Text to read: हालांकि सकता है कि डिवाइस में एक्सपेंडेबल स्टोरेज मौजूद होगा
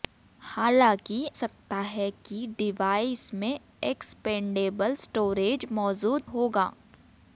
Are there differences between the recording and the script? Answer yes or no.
no